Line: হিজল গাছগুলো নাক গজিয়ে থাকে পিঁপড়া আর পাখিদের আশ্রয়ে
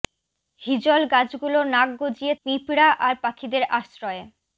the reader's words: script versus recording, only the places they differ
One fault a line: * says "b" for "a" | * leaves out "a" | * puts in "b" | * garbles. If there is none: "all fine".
* leaves out "থাকে"